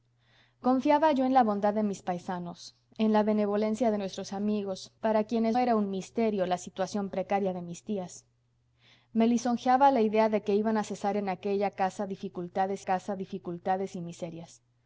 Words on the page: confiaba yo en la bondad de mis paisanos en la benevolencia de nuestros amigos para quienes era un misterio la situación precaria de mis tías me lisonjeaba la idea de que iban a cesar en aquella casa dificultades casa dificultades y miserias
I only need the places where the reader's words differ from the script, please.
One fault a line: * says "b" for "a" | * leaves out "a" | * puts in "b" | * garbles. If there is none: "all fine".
all fine